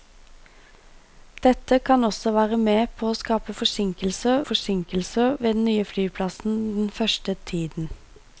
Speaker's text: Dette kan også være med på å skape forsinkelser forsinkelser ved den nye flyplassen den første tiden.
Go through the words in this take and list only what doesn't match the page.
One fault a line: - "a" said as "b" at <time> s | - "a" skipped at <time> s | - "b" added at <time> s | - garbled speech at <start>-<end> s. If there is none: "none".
none